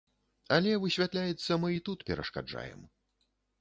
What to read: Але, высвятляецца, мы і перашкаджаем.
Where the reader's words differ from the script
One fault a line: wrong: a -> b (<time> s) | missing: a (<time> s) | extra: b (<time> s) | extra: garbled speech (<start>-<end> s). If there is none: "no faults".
extra: тут (1.9 s)